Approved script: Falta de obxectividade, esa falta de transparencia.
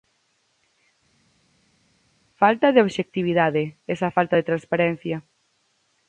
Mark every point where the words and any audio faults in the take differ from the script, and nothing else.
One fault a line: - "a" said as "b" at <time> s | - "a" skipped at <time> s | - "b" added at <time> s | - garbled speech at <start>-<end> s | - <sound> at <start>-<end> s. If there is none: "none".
none